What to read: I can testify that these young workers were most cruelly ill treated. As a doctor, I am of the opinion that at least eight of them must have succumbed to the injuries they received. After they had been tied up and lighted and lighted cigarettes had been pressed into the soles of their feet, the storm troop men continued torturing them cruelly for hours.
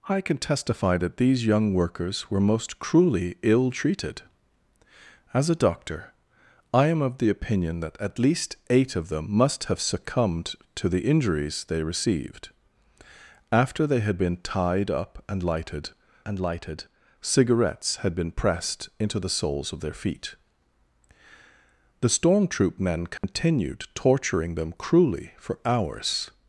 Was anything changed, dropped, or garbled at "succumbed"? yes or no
no